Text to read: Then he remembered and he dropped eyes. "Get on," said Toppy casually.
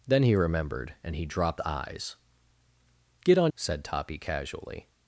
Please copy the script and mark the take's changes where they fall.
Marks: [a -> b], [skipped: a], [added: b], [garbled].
Then he remembered and he dropped eyes. "Get on," said Toppy casually.